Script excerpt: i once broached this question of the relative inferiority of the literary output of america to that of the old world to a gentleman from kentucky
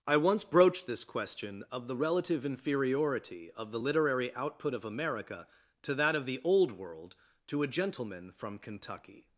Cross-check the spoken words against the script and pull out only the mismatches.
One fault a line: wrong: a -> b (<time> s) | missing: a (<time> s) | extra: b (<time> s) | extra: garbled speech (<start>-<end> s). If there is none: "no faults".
no faults